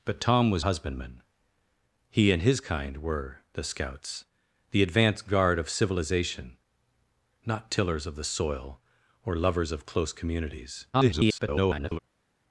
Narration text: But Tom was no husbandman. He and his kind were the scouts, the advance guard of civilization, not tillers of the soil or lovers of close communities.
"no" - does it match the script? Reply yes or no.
no